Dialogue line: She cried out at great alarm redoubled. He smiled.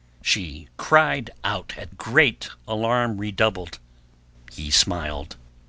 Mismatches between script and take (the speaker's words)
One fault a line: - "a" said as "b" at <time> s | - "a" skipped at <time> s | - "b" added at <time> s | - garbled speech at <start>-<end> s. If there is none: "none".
none